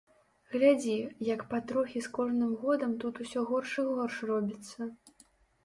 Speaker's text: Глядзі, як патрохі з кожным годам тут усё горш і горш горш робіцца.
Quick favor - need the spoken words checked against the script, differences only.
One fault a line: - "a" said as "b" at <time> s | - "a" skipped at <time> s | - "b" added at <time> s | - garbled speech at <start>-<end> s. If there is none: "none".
- "горш" skipped at 4.2 s